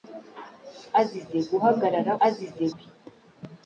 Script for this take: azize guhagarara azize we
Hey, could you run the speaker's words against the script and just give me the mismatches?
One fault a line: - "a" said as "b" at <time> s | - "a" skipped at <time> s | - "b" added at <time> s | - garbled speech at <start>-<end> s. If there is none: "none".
none